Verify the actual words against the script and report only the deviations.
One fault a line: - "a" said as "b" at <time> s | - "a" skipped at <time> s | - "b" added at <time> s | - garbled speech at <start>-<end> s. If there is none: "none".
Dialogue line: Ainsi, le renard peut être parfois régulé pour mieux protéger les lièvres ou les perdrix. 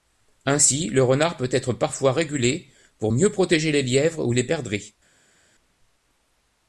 none